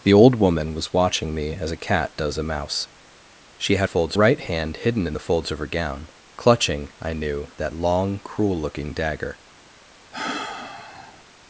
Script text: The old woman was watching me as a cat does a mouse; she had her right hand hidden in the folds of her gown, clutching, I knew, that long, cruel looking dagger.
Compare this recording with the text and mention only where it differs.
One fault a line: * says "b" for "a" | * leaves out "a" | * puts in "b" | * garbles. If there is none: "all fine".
* says "folds" for "her"